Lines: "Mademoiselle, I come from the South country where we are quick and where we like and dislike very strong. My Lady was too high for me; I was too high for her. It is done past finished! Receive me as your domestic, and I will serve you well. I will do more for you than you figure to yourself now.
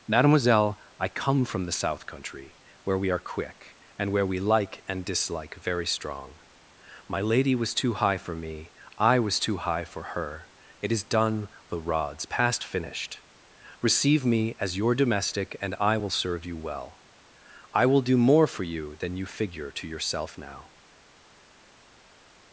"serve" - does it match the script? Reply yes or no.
yes